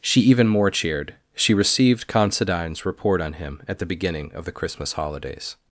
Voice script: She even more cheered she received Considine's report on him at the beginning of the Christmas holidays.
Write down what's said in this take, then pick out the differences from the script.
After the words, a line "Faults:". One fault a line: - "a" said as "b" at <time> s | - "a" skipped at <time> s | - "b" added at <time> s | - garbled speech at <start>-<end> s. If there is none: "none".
She even more cheered she received Considine's report on him at the beginning of the Christmas holidays.
Faults:
none